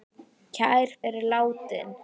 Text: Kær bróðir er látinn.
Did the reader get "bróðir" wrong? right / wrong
wrong